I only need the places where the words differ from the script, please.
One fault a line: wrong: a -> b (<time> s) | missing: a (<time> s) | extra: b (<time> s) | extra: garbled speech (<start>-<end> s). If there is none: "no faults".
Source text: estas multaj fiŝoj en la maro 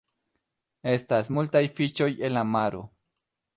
no faults